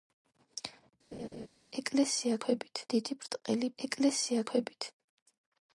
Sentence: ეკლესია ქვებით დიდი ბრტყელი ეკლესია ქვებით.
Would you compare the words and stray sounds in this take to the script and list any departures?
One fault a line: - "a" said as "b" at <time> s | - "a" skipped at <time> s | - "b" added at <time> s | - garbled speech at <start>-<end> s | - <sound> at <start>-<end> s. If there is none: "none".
- laugh at 1.1-1.5 s